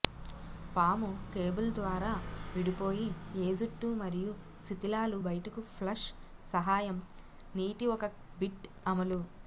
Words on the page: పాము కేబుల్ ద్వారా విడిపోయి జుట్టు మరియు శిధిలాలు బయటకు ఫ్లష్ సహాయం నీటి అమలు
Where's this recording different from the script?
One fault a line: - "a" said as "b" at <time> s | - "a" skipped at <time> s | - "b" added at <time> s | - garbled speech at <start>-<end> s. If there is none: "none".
- "ఏ" added at 3.4 s
- "ఒక బిట్" added at 8.0 s